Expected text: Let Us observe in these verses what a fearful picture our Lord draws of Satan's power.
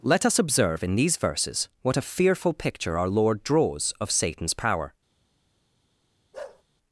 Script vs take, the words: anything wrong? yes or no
no